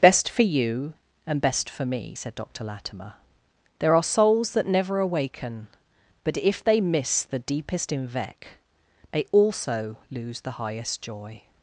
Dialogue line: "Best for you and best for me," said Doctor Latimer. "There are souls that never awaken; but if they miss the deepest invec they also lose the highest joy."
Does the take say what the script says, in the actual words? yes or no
yes